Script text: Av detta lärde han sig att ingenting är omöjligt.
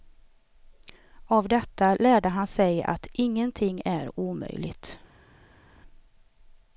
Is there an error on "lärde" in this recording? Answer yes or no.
no